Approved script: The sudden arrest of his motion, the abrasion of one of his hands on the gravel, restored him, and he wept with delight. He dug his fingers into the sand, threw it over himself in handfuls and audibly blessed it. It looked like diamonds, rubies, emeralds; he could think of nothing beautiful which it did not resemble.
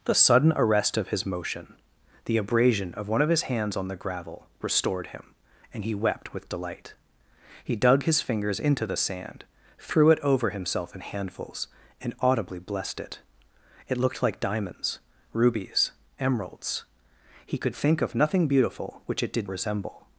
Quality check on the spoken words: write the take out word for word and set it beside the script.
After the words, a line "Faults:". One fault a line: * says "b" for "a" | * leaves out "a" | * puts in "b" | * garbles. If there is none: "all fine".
The sudden arrest of his motion, the abrasion of one of his hands on the gravel, restored him, and he wept with delight. He dug his fingers into the sand, threw it over himself in handfuls and audibly blessed it. It looked like diamonds, rubies, emeralds; he could think of nothing beautiful which it did resemble.
Faults:
* leaves out "not"